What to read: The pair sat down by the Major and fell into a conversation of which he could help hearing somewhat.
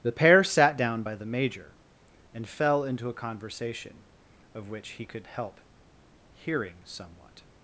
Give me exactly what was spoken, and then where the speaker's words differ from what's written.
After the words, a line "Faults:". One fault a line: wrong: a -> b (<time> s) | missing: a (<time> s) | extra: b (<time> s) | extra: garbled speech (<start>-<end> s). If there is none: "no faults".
The pair sat down by the Major and fell into a conversation of which he could help hearing somewhat.
Faults:
no faults